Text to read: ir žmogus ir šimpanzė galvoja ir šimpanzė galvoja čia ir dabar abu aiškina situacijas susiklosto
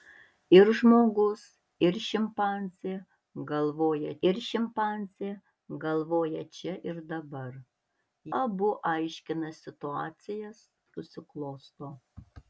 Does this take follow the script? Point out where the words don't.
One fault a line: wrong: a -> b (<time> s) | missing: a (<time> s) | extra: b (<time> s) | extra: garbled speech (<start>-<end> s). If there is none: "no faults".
no faults